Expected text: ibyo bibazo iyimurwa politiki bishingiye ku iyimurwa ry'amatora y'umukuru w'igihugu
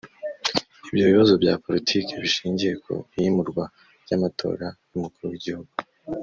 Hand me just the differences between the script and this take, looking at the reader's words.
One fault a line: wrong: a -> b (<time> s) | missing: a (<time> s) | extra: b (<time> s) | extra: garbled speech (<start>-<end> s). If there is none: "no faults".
wrong: iyimurwa -> bya (1.4 s)